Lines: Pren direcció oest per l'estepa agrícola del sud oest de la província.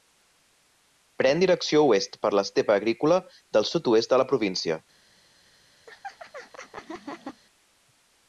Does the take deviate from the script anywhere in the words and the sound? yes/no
yes